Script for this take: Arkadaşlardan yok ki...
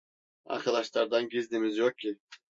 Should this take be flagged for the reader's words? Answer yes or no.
yes